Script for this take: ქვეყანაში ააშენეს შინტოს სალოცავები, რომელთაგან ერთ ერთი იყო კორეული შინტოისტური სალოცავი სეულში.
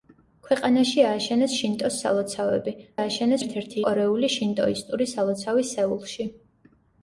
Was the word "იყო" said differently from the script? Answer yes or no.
yes